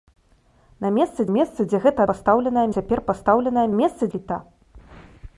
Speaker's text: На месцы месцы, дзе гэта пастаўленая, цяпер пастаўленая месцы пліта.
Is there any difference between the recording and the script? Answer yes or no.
no